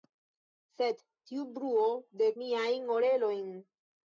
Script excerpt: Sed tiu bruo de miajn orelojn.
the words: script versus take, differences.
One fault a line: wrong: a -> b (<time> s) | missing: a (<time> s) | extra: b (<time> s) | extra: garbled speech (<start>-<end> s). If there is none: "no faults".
no faults